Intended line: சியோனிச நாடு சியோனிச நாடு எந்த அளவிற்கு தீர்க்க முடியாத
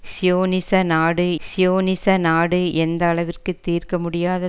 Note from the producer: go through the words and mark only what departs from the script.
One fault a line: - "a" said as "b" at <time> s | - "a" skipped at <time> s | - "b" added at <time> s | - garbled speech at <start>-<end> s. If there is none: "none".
none